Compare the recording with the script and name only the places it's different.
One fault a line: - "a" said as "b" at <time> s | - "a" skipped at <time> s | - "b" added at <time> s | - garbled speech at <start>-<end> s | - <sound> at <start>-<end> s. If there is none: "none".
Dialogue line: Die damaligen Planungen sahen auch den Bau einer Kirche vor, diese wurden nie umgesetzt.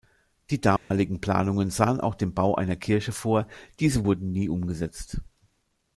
- dropout at 0.8-0.9 s